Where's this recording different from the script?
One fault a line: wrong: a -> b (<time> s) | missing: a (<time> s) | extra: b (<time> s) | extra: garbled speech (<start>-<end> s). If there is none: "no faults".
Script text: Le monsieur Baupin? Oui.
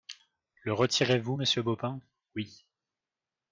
extra: retirez vous (0.7 s)